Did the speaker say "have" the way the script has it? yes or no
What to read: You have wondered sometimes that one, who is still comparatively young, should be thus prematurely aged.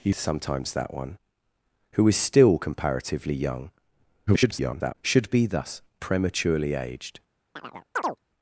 no